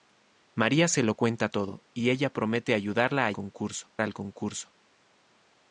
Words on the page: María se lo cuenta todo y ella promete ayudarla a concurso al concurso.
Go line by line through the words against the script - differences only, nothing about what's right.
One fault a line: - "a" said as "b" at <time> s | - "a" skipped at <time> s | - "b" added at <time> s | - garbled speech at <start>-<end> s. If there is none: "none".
none